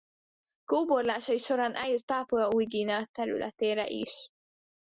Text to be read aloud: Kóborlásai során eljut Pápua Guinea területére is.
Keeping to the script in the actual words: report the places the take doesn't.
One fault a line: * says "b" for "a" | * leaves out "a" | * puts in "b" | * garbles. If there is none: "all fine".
* puts in "Új"